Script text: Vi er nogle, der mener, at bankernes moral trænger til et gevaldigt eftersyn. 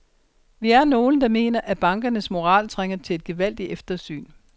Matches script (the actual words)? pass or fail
pass